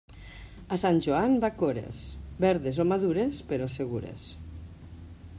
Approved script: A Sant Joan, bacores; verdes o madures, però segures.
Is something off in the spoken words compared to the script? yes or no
no